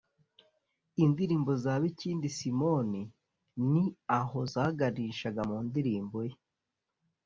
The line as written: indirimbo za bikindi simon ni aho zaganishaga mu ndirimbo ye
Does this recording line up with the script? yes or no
yes